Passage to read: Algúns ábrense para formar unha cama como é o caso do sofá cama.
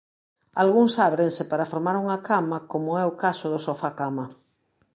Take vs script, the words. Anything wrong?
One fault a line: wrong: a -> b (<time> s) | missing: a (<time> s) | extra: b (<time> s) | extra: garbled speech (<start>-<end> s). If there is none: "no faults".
no faults